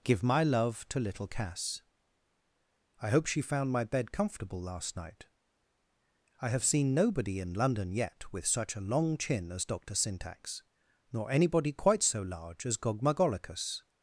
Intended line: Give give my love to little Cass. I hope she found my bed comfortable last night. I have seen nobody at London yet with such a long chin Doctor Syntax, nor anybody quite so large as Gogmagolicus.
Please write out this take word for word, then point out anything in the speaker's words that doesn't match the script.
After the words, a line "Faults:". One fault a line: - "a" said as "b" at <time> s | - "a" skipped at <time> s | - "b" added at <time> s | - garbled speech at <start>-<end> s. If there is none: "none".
Give my love to little Cass. I hope she found my bed comfortable last night. I have seen nobody in London yet with such a long chin as Doctor Syntax, nor anybody quite so large as Gogmagolicus.
Faults:
- "give" skipped at 0.2 s
- "at" said as "in" at 7.4 s
- "as" added at 9.5 s